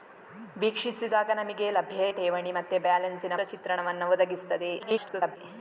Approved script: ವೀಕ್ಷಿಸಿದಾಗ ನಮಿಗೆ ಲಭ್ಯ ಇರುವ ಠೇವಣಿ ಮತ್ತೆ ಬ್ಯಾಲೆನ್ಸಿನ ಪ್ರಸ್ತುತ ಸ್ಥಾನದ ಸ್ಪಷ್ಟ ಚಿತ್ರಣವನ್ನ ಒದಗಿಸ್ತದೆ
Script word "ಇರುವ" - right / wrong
wrong